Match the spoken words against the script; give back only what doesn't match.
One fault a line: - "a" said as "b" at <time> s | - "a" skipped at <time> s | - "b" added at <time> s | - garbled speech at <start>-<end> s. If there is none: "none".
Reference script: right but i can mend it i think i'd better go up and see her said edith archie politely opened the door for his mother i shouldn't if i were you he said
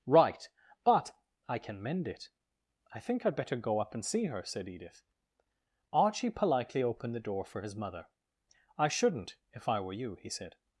none